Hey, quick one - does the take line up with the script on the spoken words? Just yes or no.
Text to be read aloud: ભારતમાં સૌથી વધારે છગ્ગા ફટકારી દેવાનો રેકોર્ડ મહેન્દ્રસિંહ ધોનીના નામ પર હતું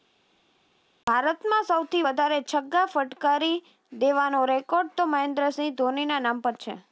no